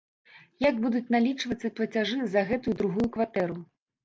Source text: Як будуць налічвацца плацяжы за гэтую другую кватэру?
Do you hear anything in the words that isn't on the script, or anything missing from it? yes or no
no